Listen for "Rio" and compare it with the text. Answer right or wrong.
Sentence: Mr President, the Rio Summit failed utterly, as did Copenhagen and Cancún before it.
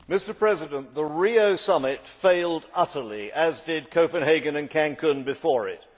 right